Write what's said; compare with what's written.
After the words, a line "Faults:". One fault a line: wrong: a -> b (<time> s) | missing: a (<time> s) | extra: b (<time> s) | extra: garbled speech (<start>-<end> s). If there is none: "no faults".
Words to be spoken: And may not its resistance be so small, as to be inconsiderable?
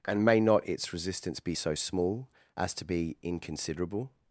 And may not its resistance be so small, as to be inconsiderable?
Faults:
no faults